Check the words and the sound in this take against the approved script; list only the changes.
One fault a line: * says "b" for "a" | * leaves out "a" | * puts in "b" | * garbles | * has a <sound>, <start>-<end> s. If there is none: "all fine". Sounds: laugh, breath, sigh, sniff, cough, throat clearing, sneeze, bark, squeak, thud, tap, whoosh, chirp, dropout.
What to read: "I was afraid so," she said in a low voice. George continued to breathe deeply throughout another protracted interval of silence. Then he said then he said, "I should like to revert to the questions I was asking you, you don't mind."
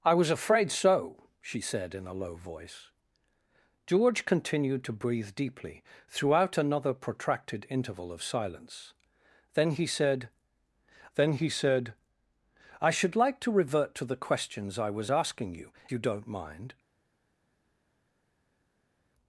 all fine